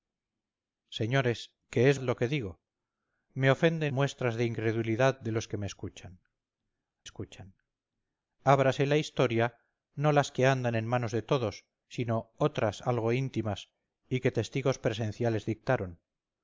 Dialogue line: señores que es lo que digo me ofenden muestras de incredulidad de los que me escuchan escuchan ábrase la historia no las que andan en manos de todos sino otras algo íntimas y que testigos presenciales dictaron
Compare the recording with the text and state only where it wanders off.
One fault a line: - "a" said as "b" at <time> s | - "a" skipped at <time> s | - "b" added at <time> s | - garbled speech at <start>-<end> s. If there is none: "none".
none